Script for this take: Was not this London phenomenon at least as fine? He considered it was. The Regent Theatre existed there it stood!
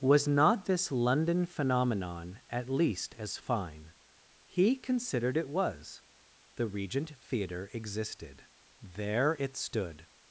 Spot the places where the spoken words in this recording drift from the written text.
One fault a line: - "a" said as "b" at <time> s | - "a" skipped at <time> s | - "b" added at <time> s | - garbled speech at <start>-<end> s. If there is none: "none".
none